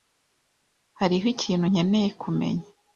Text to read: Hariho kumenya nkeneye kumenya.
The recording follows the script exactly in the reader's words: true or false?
false